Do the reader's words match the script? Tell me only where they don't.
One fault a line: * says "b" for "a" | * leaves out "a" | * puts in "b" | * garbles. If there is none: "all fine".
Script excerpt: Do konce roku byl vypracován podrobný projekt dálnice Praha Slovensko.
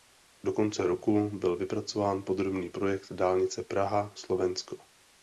all fine